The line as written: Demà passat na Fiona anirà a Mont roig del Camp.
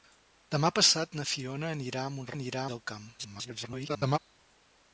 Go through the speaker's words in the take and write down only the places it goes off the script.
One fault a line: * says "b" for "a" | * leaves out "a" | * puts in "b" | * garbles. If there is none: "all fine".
* says "anirà" for "roig"
* garbles